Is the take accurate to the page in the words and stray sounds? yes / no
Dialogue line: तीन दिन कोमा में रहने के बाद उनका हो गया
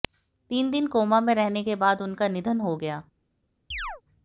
no